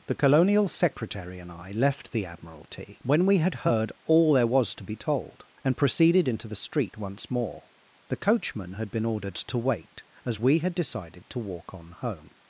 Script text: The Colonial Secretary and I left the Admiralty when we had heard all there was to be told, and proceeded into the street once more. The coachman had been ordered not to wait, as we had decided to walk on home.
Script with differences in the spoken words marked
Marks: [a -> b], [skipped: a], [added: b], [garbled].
The Colonial Secretary and I left the Admiralty when we had heard all there was to be told, and proceeded into the street once more. The coachman had been ordered [skipped: not] to wait, as we had decided to walk on home.